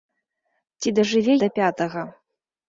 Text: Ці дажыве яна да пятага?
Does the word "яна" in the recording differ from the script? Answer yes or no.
yes